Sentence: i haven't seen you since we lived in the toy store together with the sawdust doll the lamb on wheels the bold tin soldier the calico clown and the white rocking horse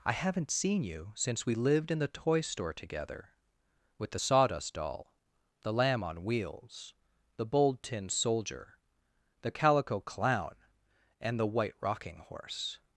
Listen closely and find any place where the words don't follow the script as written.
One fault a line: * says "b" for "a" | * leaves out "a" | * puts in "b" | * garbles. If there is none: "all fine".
all fine